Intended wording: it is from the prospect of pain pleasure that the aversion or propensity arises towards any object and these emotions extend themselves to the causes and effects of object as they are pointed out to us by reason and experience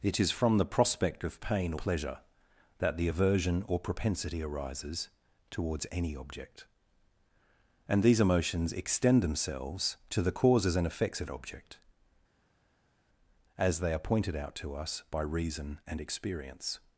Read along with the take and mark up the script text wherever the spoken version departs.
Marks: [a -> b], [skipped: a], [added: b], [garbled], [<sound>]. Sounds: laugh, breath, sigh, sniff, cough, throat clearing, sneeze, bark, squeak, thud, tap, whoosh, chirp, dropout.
it is from the prospect of pain pleasure that the aversion or propensity arises towards any object and these emotions extend themselves to the causes and effects of object as they are pointed out to us by reason and experience